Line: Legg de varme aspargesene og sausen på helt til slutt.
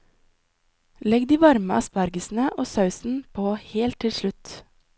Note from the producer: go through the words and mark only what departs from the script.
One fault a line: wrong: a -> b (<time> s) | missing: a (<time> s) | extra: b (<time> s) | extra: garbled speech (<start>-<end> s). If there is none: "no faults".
no faults